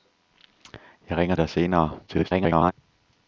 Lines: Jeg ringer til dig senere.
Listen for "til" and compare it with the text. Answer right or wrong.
wrong